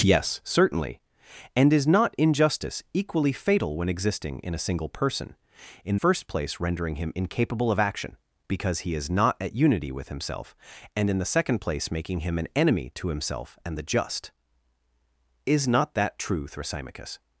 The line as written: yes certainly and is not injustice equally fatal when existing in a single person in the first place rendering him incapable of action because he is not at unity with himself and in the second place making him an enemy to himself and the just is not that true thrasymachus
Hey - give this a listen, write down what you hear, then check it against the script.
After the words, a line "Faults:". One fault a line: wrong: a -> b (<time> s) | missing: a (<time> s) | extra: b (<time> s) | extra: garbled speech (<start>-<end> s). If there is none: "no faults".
yes certainly and is not injustice equally fatal when existing in a single person in first place rendering him incapable of action because he is not at unity with himself and in the second place making him an enemy to himself and the just is not that true thrasymachus
Faults:
missing: the (6.0 s)